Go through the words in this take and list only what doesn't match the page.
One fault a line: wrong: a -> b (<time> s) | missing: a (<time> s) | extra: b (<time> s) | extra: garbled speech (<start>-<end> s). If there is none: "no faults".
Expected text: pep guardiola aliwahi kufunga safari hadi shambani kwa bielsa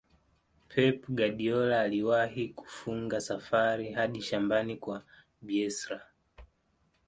no faults